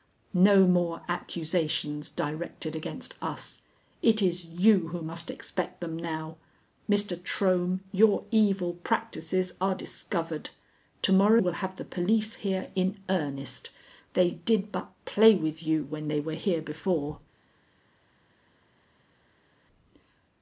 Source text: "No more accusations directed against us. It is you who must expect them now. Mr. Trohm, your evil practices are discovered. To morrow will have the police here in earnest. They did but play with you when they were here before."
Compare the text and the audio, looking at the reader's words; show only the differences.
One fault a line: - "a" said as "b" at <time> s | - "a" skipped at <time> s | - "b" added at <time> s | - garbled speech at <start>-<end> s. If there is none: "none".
none